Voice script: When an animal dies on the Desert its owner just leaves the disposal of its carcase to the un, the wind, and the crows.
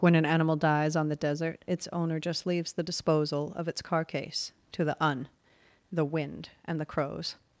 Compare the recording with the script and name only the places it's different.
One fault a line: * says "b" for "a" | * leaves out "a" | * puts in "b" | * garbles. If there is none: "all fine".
all fine